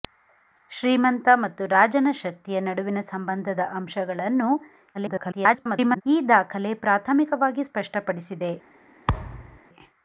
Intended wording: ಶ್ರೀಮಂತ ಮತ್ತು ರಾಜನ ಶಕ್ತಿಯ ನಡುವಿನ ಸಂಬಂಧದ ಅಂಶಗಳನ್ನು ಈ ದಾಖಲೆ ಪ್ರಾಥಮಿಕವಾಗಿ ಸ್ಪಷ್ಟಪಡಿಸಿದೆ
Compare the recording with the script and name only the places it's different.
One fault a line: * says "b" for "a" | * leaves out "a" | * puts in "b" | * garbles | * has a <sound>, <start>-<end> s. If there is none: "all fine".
* garbles
* has a thud, 9.1-9.6 s